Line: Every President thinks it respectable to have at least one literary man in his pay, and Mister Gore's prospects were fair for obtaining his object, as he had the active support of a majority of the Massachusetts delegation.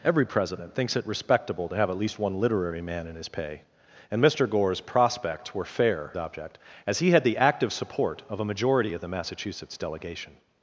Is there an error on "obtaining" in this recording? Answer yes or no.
yes